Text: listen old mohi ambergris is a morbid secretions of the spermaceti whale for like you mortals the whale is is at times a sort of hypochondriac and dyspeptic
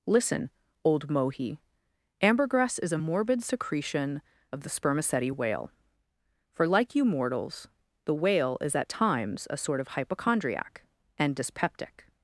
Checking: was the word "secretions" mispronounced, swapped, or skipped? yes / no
yes